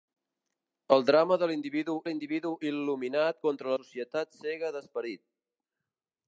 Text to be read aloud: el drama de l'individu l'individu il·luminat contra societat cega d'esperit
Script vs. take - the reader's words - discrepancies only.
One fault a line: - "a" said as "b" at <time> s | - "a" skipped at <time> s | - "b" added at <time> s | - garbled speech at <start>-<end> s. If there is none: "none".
none